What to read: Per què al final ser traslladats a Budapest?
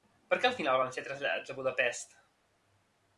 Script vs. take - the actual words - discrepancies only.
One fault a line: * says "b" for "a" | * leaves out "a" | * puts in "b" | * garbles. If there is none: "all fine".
* puts in "van"